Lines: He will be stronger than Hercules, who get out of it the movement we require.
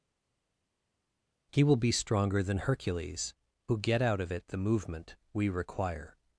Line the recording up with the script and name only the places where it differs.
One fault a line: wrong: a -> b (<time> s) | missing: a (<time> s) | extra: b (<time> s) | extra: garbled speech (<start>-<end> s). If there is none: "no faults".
no faults